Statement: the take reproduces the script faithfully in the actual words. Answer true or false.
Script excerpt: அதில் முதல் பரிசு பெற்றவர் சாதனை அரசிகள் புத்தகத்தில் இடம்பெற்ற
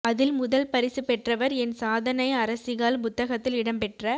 false